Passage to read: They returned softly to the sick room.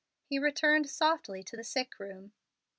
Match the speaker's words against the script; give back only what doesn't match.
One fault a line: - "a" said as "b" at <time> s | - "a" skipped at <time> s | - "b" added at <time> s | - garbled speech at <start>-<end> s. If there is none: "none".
- "They" said as "He" at 0.2 s